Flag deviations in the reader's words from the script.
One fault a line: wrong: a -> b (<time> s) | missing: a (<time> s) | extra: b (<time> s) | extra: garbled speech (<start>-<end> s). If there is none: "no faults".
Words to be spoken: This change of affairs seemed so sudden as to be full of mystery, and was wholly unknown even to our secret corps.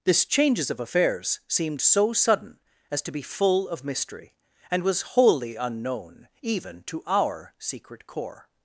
wrong: change -> changes (0.2 s)